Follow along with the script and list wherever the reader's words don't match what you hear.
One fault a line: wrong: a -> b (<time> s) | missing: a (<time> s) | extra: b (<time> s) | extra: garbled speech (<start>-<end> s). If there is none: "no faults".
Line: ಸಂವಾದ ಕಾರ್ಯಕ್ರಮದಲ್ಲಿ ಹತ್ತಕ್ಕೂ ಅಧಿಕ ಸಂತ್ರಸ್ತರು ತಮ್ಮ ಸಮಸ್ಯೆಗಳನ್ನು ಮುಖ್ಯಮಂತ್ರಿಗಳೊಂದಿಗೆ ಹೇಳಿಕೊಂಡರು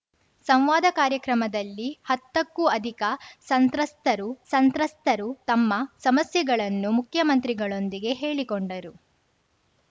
extra: ಸಂತ್ರಸ್ತರು (4.5 s)